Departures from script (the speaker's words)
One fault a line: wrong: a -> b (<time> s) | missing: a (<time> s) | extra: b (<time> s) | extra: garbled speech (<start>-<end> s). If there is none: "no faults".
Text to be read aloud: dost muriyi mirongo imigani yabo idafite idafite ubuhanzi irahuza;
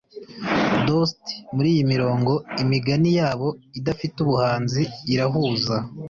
missing: idafite (4.1 s)